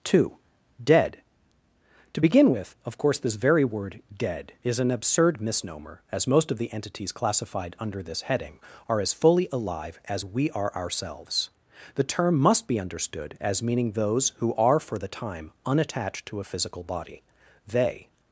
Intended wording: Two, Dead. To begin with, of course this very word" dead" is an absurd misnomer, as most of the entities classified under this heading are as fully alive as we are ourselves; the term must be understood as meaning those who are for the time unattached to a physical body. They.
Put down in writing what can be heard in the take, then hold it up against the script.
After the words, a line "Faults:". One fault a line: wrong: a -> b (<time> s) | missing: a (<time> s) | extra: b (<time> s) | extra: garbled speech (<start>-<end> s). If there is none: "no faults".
Two, Dead. To begin with, of course this very word" dead" is an absurd misnomer, as most of the entities classified under this heading are as fully alive as we are ourselves; the term must be understood as meaning those who are for the time unattached to a physical body. They.
Faults:
no faults